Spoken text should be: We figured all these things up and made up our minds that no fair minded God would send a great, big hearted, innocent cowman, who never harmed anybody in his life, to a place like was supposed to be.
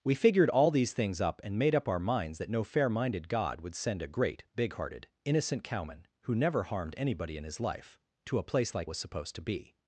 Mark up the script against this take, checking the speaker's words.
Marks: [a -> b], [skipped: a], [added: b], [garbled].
We figured all these things up and made up our minds that no fair minded God would send a great, big hearted, innocent cowman, who never harmed anybody in his life, to a place like was supposed to be.